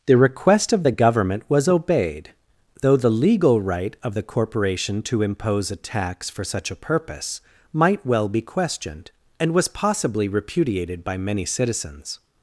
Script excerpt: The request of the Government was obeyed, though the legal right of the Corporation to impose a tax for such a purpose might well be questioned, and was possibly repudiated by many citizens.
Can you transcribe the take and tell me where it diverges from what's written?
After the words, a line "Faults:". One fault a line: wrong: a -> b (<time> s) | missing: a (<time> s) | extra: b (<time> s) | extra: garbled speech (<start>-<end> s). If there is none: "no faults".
The request of the Government was obeyed, though the legal right of the Corporation to impose a tax for such a purpose might well be questioned, and was possibly repudiated by many citizens.
Faults:
no faults